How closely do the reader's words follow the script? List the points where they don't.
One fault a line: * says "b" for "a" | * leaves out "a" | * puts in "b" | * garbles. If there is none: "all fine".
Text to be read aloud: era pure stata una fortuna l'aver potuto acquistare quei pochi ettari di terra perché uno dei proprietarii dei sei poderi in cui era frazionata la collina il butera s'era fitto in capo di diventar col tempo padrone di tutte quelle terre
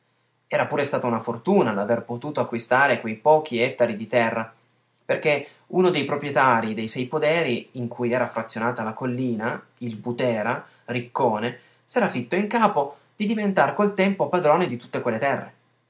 * puts in "riccone"